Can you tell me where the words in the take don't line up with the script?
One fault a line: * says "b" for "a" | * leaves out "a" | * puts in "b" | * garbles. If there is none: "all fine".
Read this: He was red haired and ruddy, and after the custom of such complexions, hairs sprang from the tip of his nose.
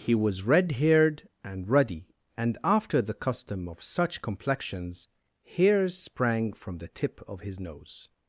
all fine